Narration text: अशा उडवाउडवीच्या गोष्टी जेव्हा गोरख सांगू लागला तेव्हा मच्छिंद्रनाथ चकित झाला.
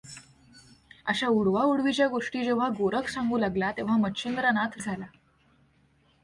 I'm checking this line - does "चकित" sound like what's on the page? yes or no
no